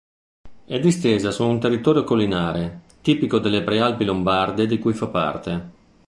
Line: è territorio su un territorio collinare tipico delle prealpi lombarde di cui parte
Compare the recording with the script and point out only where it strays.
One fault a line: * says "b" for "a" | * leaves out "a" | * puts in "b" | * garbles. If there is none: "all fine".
* says "distesa" for "territorio"
* puts in "fa"